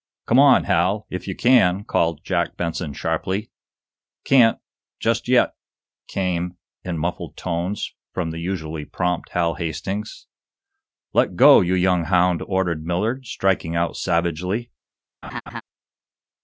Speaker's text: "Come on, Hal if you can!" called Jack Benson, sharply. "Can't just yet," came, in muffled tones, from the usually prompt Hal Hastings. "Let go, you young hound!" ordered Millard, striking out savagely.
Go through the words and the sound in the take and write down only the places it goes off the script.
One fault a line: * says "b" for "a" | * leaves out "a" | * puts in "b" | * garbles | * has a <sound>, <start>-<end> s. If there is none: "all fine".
* has a laugh, 15.2-15.6 s